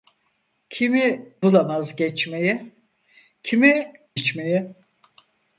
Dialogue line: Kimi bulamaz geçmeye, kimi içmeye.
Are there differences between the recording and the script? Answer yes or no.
no